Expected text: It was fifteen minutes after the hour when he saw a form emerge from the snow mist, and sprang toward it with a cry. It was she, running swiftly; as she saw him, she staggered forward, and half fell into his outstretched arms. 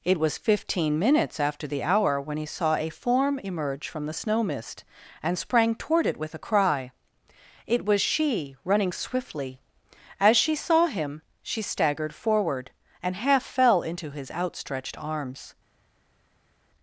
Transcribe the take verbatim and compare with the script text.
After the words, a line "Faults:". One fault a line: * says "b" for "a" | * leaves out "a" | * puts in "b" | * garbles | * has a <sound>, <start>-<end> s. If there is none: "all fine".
It was fifteen minutes after the hour when he saw a form emerge from the snow mist, and sprang toward it with a cry. It was she, running swiftly; as she saw him, she staggered forward, and half fell into his outstretched arms.
Faults:
all fine